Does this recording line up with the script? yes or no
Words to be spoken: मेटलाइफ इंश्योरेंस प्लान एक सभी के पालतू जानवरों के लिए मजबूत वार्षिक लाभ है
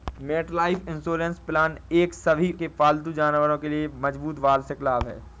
yes